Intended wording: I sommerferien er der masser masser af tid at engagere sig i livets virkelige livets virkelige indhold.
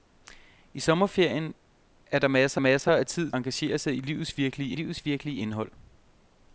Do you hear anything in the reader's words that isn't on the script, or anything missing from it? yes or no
no